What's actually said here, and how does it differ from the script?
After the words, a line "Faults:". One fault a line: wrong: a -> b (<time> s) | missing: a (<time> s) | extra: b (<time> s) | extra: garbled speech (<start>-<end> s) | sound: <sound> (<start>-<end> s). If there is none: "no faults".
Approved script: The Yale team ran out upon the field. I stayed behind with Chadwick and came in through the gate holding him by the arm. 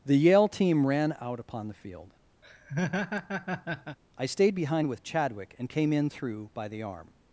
The Yale team ran out upon the field. I stayed behind with Chadwick and came in through by the arm.
Faults:
sound: laugh (2.4-4.0 s)
missing: the gate holding him (6.5 s)